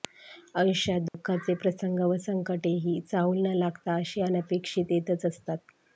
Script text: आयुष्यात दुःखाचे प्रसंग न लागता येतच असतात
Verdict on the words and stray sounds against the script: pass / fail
fail